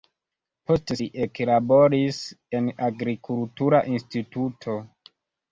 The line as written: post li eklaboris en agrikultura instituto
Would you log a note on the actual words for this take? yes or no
no